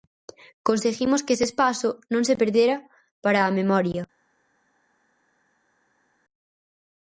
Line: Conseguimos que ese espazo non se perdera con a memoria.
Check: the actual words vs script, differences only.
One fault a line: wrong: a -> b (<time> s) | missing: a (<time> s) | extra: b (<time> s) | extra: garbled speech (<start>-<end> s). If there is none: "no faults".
wrong: con -> para (3.2 s)